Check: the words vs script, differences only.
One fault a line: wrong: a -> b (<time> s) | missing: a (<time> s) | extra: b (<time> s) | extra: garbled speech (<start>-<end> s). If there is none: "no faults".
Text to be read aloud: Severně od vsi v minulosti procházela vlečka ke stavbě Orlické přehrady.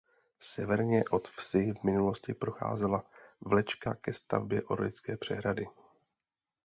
no faults